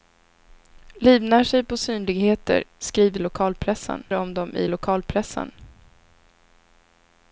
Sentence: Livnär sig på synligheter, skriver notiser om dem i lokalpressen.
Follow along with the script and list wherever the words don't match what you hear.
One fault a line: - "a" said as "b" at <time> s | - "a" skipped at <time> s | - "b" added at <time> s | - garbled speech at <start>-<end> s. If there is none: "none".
- "notiser" said as "lokalpressen" at 3.2 s